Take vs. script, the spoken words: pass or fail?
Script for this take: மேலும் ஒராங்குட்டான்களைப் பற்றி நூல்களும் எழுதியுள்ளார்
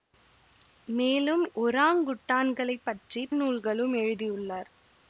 pass